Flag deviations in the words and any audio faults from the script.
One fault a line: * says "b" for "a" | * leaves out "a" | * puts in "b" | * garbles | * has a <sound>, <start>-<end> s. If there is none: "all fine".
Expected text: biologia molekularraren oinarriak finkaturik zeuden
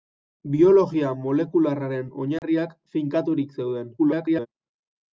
* has a dropout, 2.4-2.4 s
* garbles